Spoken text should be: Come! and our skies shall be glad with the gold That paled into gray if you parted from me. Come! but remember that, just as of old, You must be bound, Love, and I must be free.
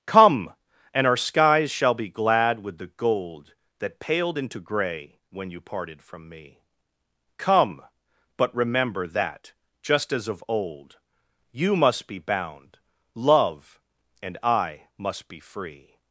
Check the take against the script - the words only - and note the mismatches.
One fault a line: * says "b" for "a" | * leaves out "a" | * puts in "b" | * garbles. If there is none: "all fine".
* says "when" for "if"